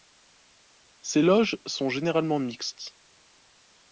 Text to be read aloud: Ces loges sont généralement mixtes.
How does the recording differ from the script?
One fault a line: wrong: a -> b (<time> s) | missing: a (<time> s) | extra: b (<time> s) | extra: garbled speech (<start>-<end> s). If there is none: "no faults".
no faults